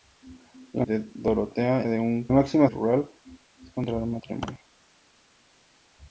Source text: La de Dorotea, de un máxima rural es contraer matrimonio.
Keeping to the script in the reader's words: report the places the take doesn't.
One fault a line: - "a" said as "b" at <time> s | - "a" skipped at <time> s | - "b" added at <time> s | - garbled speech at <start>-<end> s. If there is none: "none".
none